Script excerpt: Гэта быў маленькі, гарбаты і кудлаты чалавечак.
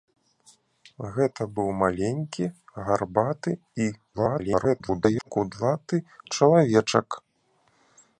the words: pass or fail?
fail